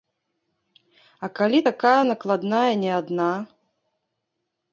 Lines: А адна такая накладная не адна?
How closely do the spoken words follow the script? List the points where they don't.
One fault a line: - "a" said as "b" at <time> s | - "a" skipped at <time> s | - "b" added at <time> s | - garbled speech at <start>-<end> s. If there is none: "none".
- "адна" said as "калі" at 1.4 s